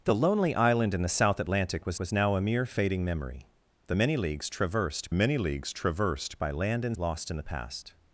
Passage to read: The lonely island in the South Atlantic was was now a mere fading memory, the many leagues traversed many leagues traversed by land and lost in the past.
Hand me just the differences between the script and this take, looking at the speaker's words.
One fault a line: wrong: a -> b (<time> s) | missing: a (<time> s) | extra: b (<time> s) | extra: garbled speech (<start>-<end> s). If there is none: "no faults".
no faults